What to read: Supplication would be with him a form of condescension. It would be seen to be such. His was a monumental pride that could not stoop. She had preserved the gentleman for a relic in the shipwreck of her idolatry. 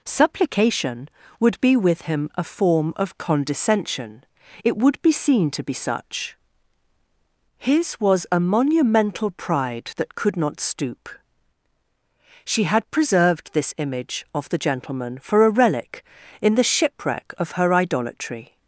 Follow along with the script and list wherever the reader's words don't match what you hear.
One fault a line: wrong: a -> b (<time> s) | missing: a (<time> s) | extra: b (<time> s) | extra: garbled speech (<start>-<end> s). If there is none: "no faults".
extra: this image of (13.5 s)